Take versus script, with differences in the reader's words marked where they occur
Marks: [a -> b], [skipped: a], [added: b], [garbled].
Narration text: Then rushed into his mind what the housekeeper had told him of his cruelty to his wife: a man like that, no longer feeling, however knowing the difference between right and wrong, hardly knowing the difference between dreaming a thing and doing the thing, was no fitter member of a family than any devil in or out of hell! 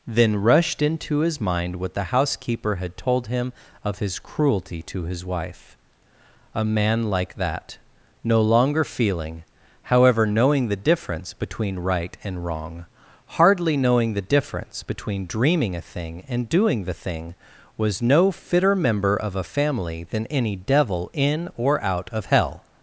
Then rushed into his mind what the housekeeper had told him of his cruelty to his wife: a man like that, no longer feeling, however knowing the difference between right and wrong, hardly knowing the difference between dreaming a thing and doing the thing, was no fitter member of a family than any devil in or out of hell!